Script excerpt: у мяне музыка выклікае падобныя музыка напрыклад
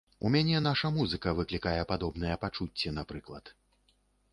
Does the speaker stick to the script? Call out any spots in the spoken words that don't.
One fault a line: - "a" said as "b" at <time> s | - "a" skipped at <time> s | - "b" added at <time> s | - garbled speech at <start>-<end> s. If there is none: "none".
- "наша" added at 0.7 s
- "музыка" said as "пачуцці" at 2.5 s